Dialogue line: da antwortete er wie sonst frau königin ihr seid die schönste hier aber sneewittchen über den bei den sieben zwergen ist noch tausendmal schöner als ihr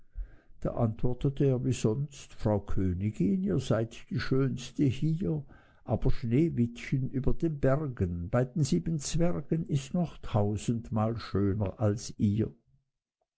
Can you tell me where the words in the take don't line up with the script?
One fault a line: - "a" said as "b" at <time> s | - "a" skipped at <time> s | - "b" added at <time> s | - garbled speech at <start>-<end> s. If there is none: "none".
- "bergen" added at 7.6 s